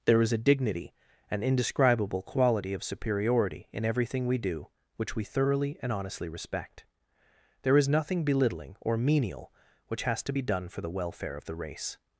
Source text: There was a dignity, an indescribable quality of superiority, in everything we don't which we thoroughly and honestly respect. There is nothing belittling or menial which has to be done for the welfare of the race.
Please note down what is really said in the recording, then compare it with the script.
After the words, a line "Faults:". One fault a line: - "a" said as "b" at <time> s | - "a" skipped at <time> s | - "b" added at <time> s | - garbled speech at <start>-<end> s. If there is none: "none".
There is a dignity, an indescribable quality of superiority, in everything we do which we thoroughly and honestly respect. There is nothing belittling or menial which has to be done for the welfare of the race.
Faults:
- "was" said as "is" at 0.2 s
- "don't" said as "do" at 4.4 s